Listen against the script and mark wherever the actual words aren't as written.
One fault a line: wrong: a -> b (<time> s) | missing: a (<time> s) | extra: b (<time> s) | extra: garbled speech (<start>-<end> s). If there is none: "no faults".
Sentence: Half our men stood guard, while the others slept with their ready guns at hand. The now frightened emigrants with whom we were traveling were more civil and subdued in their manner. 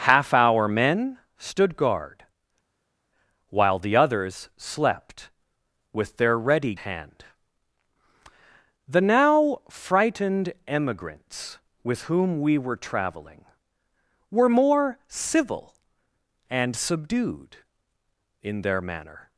missing: guns at (6.7 s)